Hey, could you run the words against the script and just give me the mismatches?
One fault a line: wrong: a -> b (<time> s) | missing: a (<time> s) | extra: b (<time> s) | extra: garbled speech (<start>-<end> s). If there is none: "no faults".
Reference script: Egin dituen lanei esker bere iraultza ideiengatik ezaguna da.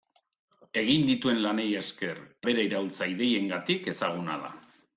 no faults